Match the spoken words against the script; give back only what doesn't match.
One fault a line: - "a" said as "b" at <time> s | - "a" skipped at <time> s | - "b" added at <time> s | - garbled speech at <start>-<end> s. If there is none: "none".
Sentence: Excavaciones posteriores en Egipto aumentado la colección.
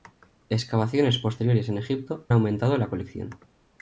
none